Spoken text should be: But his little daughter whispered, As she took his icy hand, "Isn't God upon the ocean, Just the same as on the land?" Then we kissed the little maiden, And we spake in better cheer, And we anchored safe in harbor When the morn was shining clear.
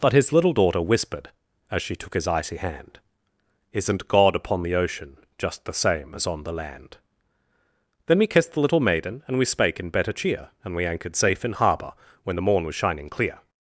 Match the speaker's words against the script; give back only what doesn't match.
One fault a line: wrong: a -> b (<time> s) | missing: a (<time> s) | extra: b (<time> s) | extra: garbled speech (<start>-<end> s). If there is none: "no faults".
no faults